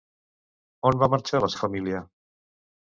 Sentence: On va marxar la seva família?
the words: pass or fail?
fail